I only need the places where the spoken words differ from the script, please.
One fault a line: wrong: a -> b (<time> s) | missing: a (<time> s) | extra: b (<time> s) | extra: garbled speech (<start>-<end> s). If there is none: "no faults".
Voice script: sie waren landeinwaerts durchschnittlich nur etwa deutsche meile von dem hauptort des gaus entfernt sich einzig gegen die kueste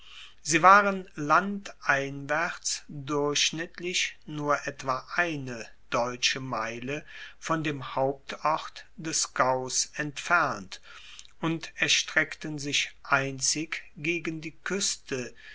extra: eine (5.2 s)
extra: und erstreckten (11.4 s)